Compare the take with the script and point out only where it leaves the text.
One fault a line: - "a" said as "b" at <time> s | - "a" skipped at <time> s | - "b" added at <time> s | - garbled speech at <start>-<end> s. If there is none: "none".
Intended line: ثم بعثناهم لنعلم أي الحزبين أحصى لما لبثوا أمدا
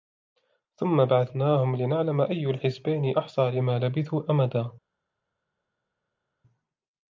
none